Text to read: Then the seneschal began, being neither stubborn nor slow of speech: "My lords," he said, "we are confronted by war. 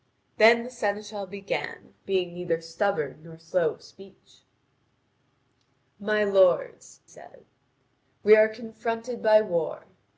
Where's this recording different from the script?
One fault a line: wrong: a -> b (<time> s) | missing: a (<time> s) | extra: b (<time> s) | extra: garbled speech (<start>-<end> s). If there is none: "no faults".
missing: he (7.0 s)